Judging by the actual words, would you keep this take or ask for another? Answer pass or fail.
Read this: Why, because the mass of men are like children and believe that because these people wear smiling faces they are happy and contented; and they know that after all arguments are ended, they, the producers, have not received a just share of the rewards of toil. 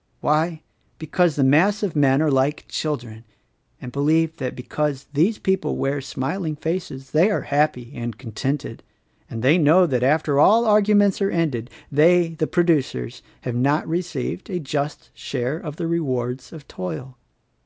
pass